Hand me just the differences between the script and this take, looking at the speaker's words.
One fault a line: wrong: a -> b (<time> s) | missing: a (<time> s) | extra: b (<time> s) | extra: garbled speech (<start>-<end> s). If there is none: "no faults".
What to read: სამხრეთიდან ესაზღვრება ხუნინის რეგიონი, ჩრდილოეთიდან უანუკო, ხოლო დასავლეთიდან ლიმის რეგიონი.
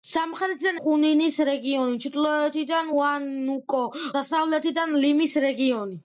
missing: ესაზღვრება (0.8 s)
missing: ხოლო (3.8 s)